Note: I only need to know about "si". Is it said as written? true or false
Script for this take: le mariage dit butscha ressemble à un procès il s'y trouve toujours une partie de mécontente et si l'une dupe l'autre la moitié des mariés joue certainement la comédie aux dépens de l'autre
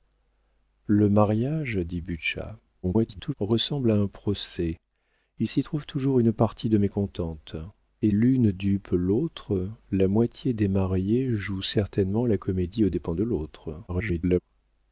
false